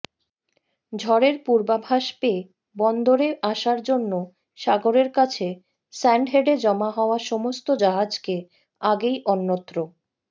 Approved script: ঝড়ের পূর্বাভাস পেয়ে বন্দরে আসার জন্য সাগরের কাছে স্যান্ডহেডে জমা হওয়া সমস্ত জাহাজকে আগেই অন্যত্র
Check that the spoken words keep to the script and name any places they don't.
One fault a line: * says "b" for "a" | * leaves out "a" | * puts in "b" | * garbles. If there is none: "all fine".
all fine